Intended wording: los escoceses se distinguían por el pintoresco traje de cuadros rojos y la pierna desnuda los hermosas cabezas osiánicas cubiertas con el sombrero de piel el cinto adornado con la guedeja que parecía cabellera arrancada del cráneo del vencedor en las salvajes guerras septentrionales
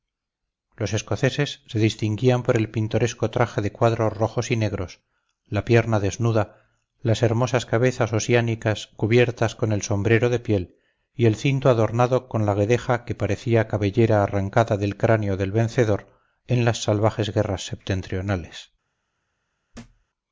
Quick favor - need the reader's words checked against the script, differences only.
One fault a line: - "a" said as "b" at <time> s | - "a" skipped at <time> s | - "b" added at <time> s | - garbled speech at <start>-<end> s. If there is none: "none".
- "negros" added at 4.5 s
- "los" said as "las" at 7.0 s
- "y" added at 11.1 s